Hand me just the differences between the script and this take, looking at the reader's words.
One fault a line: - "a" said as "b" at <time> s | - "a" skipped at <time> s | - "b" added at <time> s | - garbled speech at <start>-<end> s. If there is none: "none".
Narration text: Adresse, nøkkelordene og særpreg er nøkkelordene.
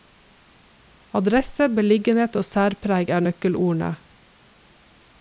- "nøkkelordene" said as "beliggenhet" at 1.8 s